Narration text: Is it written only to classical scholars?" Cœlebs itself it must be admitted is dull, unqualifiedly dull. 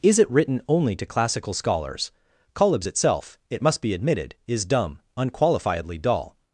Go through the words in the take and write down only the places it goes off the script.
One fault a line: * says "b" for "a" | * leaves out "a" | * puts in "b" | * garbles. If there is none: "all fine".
* says "dumb" for "dull"